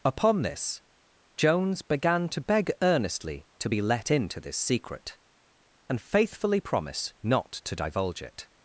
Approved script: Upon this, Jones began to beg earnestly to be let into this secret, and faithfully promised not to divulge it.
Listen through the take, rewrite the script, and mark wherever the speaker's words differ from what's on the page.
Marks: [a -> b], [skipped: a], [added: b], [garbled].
Upon this, Jones began to beg earnestly to be let into this secret, and faithfully [promised -> promise] not to divulge it.